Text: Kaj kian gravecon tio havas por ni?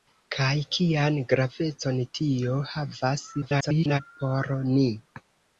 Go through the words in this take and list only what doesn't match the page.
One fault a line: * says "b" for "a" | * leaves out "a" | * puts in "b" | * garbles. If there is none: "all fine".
* garbles